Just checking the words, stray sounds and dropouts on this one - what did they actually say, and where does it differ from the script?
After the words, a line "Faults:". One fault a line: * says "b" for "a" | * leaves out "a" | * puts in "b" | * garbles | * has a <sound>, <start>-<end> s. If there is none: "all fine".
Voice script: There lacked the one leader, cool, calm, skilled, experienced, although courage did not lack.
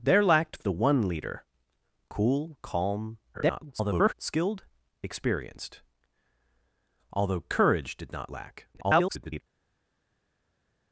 There lacked the one leader, cool, calm, [garbled] skilled, experienced, although courage did not lack. [garbled]
Faults:
* garbles
* garbles